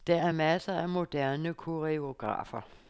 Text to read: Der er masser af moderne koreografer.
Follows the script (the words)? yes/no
yes